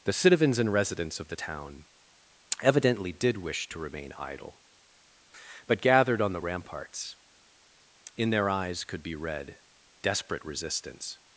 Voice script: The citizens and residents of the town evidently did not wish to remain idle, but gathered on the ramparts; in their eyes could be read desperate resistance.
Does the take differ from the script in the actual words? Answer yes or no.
yes